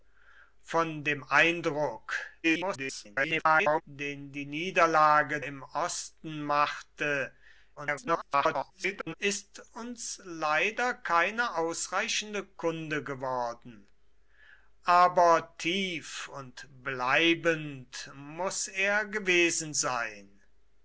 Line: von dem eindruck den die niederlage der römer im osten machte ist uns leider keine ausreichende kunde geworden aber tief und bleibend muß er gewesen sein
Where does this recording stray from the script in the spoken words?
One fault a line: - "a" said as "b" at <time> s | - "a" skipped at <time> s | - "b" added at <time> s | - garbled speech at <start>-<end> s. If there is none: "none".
- garbled speech at 2.4-3.8 s
- "der römer" skipped at 5.4 s
- garbled speech at 7.8-9.1 s